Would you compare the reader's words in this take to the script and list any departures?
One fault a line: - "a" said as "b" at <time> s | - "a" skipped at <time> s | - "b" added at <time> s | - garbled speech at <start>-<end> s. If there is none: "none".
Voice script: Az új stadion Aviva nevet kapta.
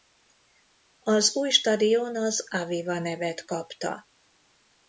- "az" added at 2.2 s